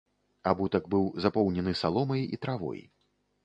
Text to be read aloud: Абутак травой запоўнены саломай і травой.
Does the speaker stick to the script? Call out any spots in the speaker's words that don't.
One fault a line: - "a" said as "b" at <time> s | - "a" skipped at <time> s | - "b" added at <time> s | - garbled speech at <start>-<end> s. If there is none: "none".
- "травой" said as "быў" at 0.9 s